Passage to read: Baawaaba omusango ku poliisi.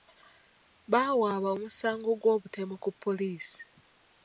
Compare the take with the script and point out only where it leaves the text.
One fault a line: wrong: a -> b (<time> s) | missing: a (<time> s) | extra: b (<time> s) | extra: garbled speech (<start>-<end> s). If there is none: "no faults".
extra: gw'obutemu (2.2 s)